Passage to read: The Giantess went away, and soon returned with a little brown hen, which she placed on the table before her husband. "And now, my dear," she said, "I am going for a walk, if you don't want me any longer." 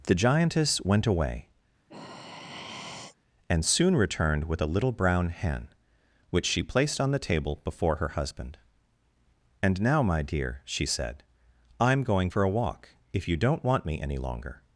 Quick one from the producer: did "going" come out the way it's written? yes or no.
yes